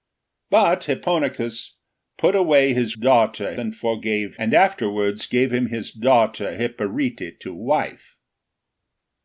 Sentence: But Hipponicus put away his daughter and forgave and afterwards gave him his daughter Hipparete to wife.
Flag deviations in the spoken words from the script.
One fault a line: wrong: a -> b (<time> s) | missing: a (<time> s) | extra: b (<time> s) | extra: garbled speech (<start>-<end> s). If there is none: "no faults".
no faults